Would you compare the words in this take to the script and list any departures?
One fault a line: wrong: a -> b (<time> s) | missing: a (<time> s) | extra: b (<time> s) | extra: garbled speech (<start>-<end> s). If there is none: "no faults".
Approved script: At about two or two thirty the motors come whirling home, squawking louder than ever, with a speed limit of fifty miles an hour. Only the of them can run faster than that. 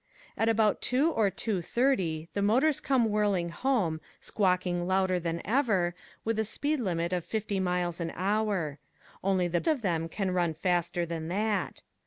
no faults